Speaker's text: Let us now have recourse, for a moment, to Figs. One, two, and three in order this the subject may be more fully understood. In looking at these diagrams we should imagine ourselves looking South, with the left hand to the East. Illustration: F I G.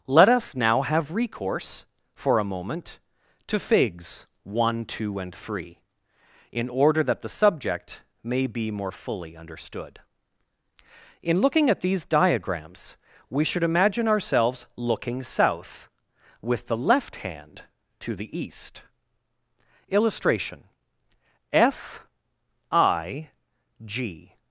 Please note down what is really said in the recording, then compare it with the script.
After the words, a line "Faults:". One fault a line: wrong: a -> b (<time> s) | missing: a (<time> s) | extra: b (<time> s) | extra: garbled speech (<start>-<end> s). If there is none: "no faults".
Let us now have recourse, for a moment, to Figs. One, two, and three in order that the subject may be more fully understood. In looking at these diagrams we should imagine ourselves looking South, with the left hand to the East. Illustration: F I G.
Faults:
wrong: this -> that (7.0 s)